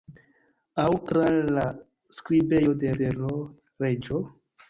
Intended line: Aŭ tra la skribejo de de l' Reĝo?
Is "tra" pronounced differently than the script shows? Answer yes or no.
no